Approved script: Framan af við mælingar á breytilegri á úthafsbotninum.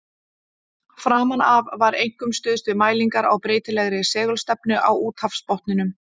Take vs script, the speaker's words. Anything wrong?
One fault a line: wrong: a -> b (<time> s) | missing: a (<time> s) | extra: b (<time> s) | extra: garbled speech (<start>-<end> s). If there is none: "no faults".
extra: var einkum stuðst (1.8 s)
extra: segulstefnu (4.2 s)